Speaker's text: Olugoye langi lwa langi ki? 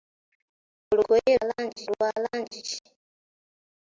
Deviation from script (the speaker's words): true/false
false